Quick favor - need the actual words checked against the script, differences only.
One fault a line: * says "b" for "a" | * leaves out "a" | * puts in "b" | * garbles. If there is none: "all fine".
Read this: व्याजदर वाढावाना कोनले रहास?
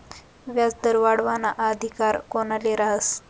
* puts in "अधिकार"